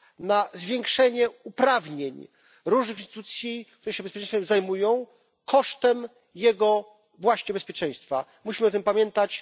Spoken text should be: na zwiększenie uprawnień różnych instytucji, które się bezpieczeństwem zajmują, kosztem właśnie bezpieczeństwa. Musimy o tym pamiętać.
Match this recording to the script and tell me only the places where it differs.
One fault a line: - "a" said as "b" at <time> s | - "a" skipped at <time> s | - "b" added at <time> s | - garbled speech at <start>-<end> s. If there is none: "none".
- "jego" added at 6.4 s